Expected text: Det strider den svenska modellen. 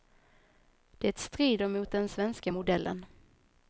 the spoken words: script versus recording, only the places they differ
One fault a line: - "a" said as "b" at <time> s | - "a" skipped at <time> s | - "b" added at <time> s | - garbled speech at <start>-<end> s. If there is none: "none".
- "mot" added at 1.7 s